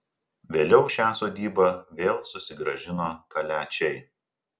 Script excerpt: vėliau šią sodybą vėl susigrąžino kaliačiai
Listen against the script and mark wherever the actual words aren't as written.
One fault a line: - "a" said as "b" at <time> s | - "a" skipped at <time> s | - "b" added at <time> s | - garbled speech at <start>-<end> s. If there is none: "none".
none